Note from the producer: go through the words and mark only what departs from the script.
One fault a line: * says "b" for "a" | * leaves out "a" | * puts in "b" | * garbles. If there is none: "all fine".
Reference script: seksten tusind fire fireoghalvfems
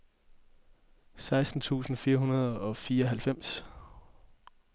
* puts in "hundrede og"